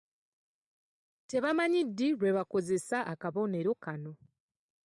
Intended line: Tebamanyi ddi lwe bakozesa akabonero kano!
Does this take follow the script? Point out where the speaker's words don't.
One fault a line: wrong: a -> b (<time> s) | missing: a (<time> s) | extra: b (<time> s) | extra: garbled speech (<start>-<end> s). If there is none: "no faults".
no faults